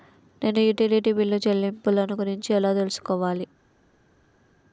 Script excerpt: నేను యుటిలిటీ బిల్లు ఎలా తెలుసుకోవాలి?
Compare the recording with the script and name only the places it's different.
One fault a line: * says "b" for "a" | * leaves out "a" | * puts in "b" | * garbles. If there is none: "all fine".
* puts in "చెల్లింపులను గురించి"